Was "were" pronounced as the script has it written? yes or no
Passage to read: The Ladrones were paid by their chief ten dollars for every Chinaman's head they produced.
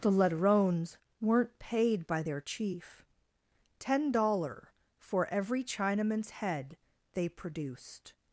no